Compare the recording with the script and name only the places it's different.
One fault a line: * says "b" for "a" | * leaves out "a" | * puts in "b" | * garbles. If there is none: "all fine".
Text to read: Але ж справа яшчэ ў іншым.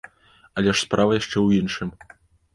all fine